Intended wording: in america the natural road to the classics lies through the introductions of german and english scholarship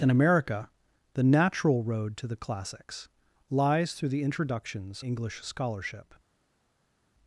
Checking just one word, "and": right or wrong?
wrong